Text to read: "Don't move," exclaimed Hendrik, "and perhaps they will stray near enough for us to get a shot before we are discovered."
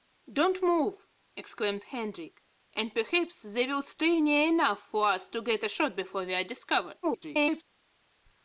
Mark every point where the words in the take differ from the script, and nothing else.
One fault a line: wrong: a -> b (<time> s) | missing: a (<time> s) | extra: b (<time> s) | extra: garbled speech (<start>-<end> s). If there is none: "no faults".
extra: garbled speech (7.0-7.6 s)